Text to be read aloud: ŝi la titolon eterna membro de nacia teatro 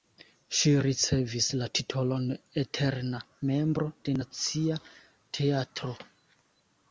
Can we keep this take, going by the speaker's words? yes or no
no